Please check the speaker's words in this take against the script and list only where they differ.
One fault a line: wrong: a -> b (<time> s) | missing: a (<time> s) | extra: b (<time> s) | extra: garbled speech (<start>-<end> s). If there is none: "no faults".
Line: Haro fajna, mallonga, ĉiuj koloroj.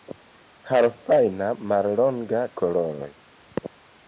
missing: ĉiuj (2.4 s)